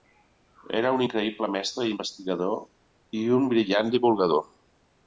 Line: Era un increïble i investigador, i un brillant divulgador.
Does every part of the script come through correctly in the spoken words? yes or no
no